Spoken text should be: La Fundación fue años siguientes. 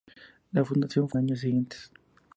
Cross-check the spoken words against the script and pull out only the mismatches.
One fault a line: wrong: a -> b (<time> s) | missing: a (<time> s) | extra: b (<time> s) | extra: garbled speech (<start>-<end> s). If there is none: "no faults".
no faults